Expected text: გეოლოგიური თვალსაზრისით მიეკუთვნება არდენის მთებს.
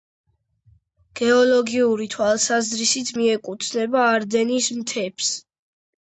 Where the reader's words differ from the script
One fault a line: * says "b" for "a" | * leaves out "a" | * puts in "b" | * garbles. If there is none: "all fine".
all fine